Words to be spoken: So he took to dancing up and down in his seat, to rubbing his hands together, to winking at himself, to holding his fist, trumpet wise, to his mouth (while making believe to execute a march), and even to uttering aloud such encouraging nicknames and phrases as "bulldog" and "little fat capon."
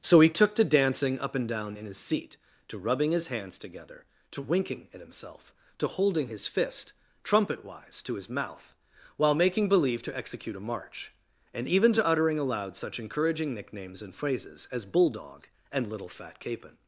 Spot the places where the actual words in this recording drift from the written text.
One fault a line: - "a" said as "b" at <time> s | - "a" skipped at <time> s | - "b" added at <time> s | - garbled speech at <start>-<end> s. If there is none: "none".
none